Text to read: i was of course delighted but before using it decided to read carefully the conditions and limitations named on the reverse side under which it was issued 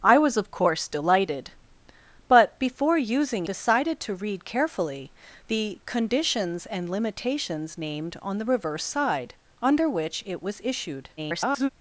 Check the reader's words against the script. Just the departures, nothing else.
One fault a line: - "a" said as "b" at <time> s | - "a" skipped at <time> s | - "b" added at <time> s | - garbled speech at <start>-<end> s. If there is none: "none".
- "it" skipped at 3.5 s
- garbled speech at 11.2-11.7 s